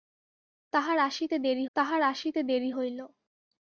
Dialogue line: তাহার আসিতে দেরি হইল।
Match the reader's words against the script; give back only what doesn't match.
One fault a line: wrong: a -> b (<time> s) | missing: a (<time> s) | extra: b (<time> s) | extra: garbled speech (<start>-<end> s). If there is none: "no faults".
extra: তাহার আসিতে দেরি (1.8 s)